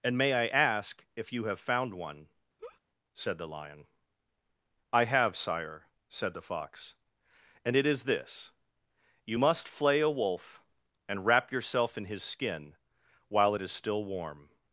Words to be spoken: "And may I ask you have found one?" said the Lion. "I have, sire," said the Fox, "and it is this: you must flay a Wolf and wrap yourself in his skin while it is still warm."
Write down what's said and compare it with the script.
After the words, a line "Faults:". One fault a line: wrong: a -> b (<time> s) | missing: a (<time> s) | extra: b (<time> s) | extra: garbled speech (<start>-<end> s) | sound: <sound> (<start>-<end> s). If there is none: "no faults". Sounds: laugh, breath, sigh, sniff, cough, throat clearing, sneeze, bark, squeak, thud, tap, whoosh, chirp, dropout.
"And may I ask if you have found one?" said the Lion. "I have, sire," said the Fox, "and it is this: you must flay a Wolf and wrap yourself in his skin while it is still warm."
Faults:
extra: if (1.1 s)
sound: laugh (2.6-2.8 s)